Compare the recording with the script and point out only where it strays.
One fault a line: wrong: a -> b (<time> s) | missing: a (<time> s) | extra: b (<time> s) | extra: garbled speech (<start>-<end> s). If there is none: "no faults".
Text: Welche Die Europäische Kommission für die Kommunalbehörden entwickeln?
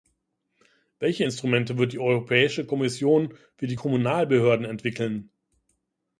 extra: Instrumente wird (1.2 s)